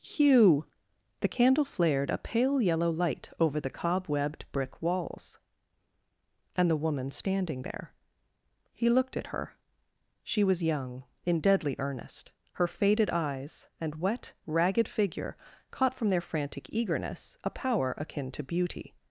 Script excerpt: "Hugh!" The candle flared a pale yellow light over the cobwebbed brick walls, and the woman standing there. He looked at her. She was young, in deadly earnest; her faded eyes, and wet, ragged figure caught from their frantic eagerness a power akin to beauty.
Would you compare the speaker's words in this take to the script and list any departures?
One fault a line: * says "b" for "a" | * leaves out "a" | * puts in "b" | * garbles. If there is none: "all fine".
all fine